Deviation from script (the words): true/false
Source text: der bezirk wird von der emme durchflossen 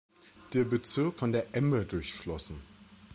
true